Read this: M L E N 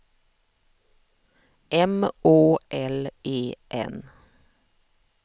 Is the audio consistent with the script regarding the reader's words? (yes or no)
no